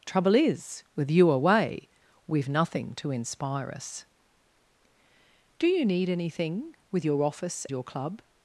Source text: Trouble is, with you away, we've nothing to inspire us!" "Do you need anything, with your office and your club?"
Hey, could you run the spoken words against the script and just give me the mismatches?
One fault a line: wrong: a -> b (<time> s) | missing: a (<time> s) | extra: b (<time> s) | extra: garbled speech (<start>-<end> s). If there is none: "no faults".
missing: and (7.7 s)